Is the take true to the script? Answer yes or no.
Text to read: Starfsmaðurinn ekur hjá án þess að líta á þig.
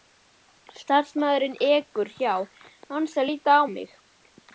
no